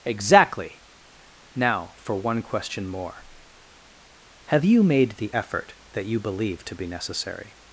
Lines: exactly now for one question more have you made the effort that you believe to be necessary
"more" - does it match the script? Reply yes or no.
yes